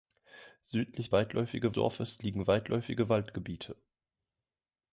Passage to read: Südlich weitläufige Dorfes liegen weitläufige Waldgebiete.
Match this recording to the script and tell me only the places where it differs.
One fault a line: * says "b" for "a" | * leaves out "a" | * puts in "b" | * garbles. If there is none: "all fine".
all fine